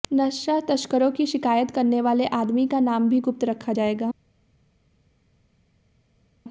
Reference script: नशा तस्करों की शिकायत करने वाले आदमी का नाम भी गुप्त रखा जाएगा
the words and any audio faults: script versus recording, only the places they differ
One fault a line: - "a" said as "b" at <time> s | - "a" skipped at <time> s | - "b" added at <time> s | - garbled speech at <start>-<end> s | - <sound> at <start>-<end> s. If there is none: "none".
none